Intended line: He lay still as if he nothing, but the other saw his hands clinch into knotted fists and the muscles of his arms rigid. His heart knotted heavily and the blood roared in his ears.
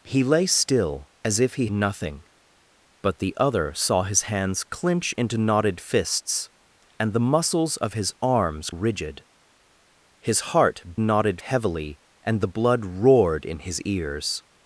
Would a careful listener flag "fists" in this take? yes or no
no